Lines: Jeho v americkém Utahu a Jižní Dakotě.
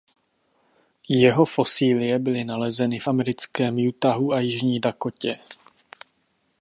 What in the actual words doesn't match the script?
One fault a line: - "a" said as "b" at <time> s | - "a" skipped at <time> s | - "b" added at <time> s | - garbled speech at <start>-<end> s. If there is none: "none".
- "fosílie byly nalezeny" added at 1.4 s